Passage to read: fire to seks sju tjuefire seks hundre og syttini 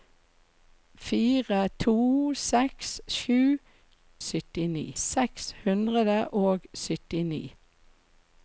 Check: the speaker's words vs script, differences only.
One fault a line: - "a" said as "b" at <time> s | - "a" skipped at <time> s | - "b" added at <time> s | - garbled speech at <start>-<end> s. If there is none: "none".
- "tjuefire" said as "syttini" at 4.3 s